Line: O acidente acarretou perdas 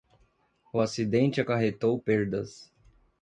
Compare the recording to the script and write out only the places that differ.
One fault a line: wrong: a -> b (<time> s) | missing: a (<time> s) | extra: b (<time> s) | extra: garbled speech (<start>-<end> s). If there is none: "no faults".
no faults